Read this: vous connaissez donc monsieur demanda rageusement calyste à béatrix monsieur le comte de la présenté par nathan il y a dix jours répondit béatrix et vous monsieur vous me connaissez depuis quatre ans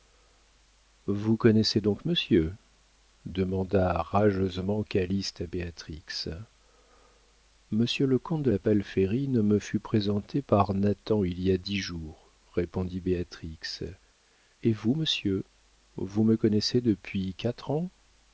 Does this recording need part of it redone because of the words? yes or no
yes